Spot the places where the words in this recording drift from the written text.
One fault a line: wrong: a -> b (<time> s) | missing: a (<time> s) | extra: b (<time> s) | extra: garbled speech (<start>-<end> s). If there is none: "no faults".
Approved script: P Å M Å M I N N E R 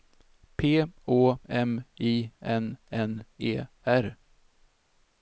missing: Å M (1.8 s)